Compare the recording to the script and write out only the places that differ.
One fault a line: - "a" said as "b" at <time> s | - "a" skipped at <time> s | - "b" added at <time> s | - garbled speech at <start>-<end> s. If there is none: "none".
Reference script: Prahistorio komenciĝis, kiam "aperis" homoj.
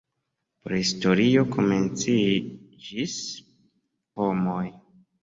- "kiam aperis" skipped at 3.2 s